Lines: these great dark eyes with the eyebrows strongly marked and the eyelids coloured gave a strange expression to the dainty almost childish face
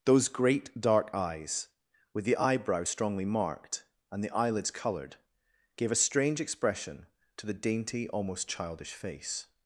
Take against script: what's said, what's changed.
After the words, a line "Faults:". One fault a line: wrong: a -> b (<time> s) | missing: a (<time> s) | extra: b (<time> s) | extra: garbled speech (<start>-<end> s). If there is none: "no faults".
those great dark eyes with the eyebrows strongly marked and the eyelids coloured gave a strange expression to the dainty almost childish face
Faults:
wrong: these -> those (0.0 s)